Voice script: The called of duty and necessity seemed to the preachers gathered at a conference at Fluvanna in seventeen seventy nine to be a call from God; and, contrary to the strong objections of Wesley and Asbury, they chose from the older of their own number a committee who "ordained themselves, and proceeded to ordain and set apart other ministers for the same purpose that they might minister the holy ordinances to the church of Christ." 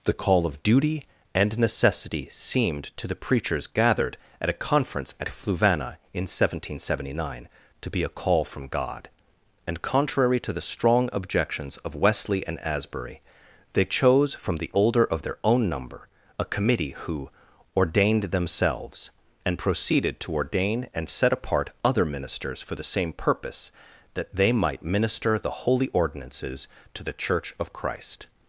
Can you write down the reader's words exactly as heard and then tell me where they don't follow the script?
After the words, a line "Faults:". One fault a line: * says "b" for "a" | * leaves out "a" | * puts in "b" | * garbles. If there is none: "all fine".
The call of duty and necessity seemed to the preachers gathered at a conference at Fluvanna in seventeen seventy nine to be a call from God; and, contrary to the strong objections of Wesley and Asbury, they chose from the older of their own number a committee who "ordained themselves, and proceeded to ordain and set apart other ministers for the same purpose that they might minister the holy ordinances to the church of Christ."
Faults:
* says "call" for "called"